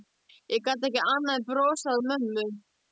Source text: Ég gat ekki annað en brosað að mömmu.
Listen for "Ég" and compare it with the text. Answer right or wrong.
right